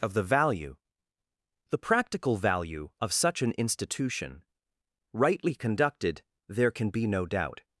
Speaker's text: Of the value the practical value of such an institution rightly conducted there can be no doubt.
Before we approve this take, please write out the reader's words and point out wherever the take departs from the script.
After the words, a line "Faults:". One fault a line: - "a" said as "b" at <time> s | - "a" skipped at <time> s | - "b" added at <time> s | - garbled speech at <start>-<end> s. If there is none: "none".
Of the value the practical value of such an institution rightly conducted there can be no doubt.
Faults:
none